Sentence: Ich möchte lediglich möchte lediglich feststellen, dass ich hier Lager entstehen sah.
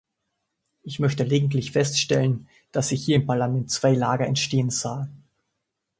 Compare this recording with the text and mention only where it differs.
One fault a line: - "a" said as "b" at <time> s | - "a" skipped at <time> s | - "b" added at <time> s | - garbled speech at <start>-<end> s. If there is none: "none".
- "möchte lediglich" skipped at 1.7 s
- "im Parlament zwei" added at 3.1 s